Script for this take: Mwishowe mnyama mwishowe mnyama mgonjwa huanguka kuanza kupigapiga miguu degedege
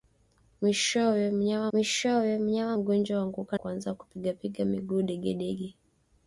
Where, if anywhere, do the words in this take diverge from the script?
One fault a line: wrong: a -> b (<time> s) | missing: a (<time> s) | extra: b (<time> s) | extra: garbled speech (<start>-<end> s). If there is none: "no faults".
no faults